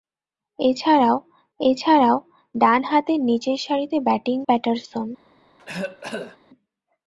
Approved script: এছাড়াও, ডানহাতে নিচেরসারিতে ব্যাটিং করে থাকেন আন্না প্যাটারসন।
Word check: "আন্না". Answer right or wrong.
wrong